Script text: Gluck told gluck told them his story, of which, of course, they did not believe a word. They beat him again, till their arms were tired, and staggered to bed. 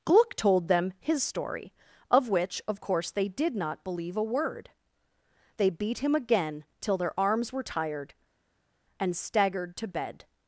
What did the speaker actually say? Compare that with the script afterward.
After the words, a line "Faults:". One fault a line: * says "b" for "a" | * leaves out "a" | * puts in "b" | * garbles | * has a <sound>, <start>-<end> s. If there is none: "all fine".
Gluck told them his story, of which, of course, they did not believe a word. They beat him again, till their arms were tired, and staggered to bed.
Faults:
* leaves out "gluck told"